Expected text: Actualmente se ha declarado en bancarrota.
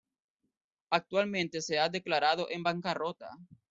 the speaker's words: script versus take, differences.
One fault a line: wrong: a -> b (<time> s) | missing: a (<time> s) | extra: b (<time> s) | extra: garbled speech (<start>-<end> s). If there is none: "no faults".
no faults